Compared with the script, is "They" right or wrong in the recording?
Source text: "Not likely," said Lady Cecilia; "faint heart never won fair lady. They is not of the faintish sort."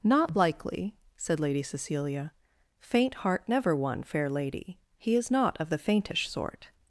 wrong